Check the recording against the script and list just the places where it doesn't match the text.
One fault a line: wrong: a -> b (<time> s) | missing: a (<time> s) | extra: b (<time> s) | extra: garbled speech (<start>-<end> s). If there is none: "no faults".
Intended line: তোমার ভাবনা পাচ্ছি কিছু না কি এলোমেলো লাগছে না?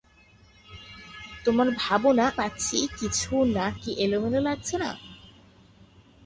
no faults